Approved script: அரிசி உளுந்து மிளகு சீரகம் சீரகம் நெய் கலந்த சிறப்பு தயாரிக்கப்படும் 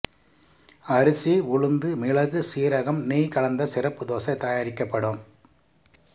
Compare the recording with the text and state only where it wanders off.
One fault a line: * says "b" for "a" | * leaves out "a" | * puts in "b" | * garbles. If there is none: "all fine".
* leaves out "சீரகம்"
* puts in "தோசை"